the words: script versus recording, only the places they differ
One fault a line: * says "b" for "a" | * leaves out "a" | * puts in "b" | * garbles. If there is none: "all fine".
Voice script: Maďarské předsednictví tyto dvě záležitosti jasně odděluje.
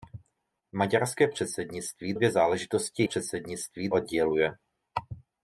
* leaves out "tyto"
* says "předsednictví" for "jasně"